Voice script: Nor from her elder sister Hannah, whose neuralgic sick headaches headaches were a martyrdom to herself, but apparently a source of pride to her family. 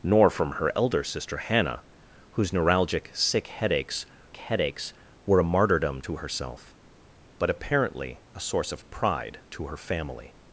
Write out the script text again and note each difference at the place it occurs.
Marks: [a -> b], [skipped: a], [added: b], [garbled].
Nor from her elder sister Hannah, whose neuralgic sick headaches headaches were a martyrdom to herself, but apparently a source of pride to her family.